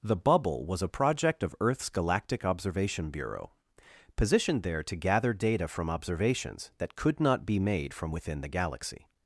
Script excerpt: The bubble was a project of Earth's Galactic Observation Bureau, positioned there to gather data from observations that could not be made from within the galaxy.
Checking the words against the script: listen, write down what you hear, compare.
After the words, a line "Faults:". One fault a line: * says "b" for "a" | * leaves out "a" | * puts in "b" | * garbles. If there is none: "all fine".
The bubble was a project of Earth's Galactic Observation Bureau, positioned there to gather data from observations that could not be made from within the galaxy.
Faults:
all fine